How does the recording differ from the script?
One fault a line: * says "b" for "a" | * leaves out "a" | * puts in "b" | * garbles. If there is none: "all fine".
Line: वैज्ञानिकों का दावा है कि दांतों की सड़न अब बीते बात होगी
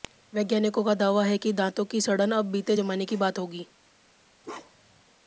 * puts in "जमाने की"